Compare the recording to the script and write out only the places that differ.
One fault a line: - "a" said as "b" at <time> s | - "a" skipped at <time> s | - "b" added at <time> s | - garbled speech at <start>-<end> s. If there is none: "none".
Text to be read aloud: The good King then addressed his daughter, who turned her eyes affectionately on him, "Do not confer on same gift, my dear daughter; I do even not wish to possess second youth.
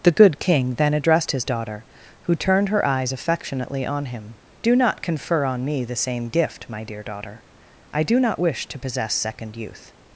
- "me the" added at 5.7 s
- "even" skipped at 8.2 s